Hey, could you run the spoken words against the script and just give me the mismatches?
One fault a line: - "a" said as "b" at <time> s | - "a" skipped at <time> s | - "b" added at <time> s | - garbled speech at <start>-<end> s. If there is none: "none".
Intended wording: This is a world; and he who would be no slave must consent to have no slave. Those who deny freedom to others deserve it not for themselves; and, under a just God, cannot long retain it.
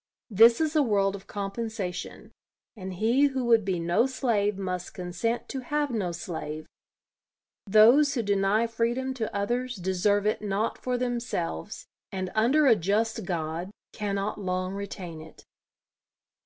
- "of compensation" added at 1.1 s